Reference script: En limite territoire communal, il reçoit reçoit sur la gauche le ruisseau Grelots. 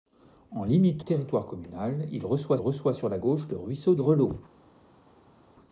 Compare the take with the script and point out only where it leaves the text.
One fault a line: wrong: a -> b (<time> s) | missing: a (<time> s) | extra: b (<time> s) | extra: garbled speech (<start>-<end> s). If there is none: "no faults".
no faults